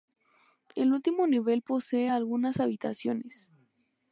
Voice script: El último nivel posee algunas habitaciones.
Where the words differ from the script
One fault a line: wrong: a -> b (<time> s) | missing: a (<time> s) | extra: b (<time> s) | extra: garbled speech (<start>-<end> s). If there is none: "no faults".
no faults